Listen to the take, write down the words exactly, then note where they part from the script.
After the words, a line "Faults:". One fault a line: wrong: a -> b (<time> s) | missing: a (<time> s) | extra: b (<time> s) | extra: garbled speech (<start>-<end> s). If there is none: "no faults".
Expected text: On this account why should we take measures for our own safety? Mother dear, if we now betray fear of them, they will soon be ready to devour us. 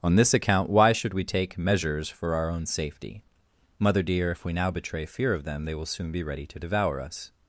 On this account why should we take measures for our own safety? Mother dear, if we now betray fear of them, they will soon be ready to devour us.
Faults:
no faults